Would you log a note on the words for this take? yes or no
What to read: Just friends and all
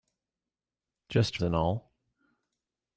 yes